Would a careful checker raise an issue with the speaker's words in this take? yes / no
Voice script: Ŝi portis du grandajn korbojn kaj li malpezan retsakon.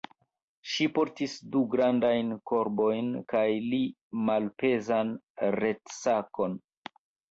no